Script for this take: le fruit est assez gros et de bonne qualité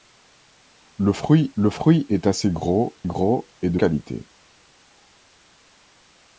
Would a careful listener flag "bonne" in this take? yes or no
yes